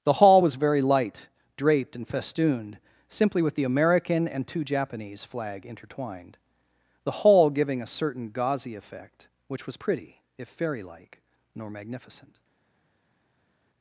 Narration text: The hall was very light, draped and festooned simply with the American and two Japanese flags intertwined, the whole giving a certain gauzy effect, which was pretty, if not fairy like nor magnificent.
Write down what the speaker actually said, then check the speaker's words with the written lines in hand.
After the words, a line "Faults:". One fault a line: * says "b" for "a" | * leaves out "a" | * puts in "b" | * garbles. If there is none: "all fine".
The hall was very light, draped and festooned simply with the American and two Japanese flag intertwined, the whole giving a certain gauzy effect, which was pretty, if fairy like nor magnificent.
Faults:
* says "flag" for "flags"
* leaves out "not"